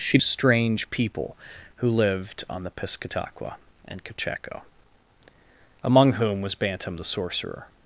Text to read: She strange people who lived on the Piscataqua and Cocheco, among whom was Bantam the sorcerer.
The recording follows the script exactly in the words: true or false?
true